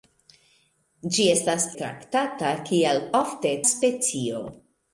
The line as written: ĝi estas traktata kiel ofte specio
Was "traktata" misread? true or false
false